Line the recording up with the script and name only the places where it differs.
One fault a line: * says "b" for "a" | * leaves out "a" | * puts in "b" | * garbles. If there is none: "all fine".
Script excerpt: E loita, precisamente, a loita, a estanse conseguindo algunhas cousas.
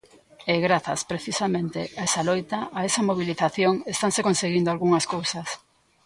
* says "grazas" for "loita"
* puts in "esa"
* puts in "esa mobilización"